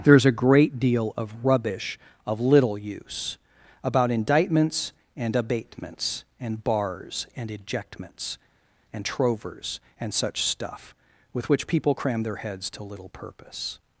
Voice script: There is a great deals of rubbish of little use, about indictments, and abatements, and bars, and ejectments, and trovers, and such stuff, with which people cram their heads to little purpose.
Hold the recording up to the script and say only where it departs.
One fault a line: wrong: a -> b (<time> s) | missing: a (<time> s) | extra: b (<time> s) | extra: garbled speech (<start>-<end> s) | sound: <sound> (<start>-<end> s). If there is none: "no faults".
wrong: deals -> deal (0.8 s)